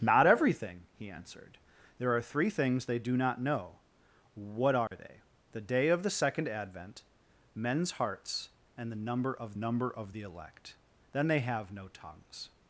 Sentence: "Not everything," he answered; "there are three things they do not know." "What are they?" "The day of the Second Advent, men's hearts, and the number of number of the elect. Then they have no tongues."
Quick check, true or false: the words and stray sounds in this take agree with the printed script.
false